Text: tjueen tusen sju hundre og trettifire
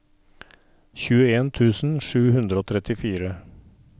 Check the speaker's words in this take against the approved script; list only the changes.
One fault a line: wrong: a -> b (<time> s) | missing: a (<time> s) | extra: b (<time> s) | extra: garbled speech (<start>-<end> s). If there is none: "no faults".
no faults